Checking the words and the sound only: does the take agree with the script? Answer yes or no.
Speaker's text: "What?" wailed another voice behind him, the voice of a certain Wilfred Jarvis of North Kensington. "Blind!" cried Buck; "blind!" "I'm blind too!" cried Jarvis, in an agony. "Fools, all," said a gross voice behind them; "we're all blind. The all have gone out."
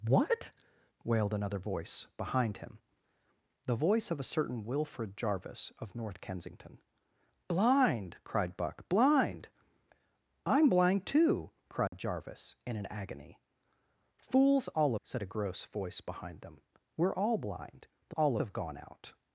no